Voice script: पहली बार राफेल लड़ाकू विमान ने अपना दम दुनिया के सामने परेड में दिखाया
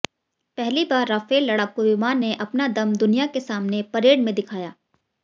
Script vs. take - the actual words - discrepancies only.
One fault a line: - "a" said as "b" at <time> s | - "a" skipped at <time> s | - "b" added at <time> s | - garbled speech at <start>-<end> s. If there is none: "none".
none